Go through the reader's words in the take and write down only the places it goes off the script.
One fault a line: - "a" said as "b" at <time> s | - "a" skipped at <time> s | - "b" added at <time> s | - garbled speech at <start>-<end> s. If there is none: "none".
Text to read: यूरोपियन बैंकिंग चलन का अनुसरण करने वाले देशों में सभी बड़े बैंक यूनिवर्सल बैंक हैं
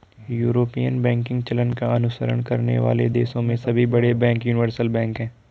none